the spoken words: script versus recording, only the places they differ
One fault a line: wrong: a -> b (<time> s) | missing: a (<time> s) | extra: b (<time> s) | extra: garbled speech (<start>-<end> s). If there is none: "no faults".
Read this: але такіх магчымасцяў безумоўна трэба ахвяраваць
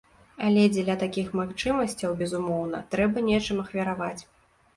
extra: дзеля (0.8 s)
extra: нечым (3.3 s)